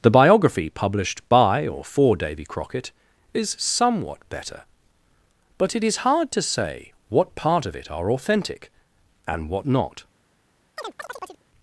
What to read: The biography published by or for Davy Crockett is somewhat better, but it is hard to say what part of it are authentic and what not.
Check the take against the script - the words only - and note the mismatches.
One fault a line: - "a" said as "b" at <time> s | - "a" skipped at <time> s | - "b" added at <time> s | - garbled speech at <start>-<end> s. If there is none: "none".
none